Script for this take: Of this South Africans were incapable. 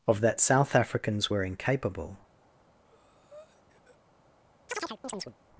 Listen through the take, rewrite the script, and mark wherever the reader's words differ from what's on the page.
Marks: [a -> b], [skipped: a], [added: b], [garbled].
Of [this -> that] South Africans were incapable.